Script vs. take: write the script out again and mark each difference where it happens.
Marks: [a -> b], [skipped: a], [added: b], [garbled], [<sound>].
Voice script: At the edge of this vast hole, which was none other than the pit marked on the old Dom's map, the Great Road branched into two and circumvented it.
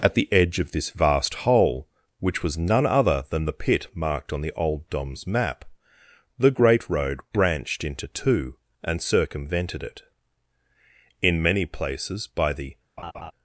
At the edge of this vast hole, which was none other than the pit marked on the old Dom's map, the Great Road branched into two and circumvented it. [added: In many places by the] [laugh]